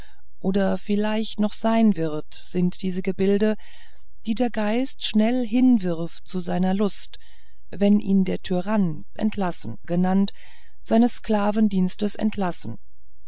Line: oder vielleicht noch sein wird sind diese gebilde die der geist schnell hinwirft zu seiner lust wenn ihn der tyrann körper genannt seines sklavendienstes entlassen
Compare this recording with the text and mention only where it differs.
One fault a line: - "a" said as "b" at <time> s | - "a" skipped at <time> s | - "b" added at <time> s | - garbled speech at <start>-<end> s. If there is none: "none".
- "körper" said as "entlassen" at 9.1 s